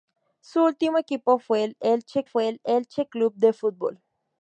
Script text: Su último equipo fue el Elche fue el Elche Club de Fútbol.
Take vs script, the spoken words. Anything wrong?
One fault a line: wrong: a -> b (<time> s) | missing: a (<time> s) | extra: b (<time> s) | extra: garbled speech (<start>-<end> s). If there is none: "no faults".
no faults